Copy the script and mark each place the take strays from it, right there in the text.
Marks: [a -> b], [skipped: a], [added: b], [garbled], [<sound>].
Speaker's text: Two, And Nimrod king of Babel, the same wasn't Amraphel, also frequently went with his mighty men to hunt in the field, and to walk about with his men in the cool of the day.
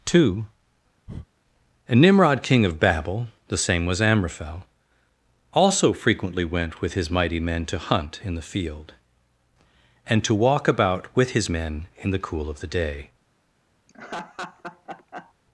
Two, [breath] And Nimrod king of Babel, the same [wasn't -> was] Amraphel, also frequently went with his mighty men to hunt in the field, and to walk about with his men in the cool of the day. [laugh]